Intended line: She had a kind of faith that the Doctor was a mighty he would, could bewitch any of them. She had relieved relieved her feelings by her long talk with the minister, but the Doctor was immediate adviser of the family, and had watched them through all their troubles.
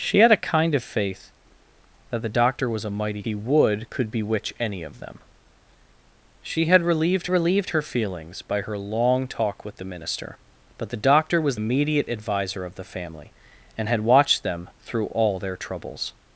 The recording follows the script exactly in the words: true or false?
true